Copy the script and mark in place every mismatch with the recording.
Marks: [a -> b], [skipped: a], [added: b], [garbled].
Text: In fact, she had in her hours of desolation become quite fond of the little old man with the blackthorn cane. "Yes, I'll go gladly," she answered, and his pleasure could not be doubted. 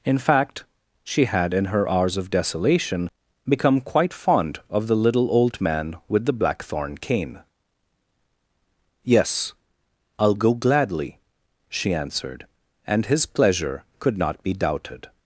In fact, she had in her hours of desolation become quite fond of the little old man with the blackthorn cane. "Yes, I'll go gladly," she answered, and his pleasure could not be doubted.